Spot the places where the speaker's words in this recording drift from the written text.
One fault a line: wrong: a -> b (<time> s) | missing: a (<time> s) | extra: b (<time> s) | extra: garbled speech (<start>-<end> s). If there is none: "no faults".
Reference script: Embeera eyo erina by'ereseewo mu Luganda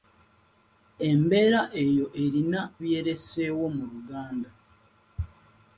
no faults